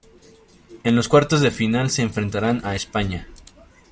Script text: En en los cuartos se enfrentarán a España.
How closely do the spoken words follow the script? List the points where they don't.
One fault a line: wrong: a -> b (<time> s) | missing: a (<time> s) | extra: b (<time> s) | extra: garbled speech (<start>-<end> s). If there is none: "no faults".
missing: en (0.9 s)
extra: de final (1.4 s)